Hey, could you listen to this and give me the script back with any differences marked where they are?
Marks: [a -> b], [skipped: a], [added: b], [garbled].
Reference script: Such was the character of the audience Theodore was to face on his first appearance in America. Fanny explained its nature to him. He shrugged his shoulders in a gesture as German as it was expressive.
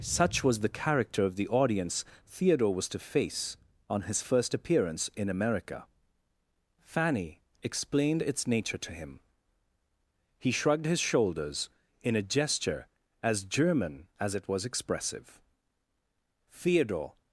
Such was the character of the audience Theodore was to face on his first appearance in America. Fanny explained its nature to him. He shrugged his shoulders in a gesture as German as it was expressive. [added: Theodore]